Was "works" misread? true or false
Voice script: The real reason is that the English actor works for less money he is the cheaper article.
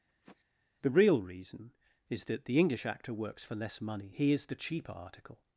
false